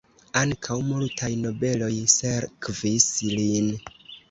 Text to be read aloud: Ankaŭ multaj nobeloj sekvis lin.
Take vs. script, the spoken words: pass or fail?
pass